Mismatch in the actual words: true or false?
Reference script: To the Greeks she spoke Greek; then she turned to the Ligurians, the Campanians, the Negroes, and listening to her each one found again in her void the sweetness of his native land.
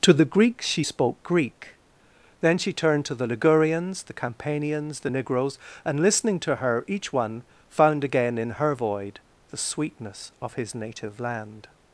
false